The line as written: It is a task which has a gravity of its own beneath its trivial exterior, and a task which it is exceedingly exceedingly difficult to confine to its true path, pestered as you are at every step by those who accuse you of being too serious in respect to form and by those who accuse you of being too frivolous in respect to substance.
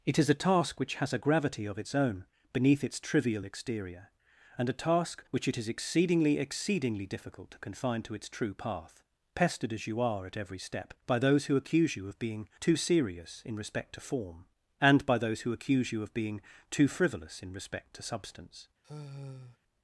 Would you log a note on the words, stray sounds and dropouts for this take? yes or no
yes